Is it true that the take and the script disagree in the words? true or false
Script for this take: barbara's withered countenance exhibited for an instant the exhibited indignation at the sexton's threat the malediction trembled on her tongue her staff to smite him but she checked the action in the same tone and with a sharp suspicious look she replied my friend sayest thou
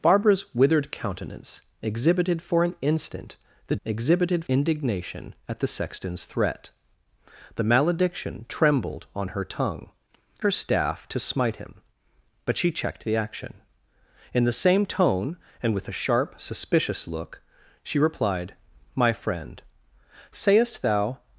false